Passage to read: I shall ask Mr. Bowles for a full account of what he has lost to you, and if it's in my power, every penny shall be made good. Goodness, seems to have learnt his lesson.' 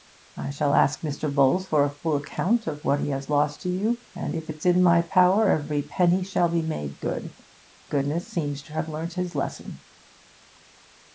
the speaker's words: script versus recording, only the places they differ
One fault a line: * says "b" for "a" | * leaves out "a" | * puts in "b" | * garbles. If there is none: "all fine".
all fine